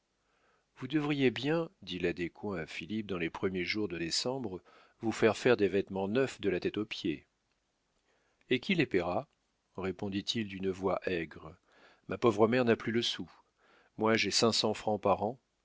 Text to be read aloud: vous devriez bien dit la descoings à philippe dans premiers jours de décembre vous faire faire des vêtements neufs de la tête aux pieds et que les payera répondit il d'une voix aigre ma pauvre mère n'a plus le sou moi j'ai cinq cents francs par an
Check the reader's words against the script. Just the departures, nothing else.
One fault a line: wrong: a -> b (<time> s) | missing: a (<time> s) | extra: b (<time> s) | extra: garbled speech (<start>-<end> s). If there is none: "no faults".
extra: les (3.2 s)
wrong: que -> qui (8.6 s)